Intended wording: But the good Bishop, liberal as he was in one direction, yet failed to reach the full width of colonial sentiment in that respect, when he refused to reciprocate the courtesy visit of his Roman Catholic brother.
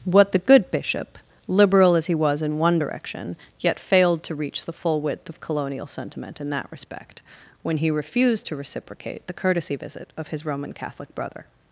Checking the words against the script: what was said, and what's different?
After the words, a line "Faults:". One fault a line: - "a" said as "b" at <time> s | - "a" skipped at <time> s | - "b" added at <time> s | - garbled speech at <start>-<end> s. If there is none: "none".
What the good Bishop, liberal as he was in one direction, yet failed to reach the full width of colonial sentiment in that respect, when he refused to reciprocate the courtesy visit of his Roman Catholic brother.
Faults:
- "But" said as "What" at 0.1 s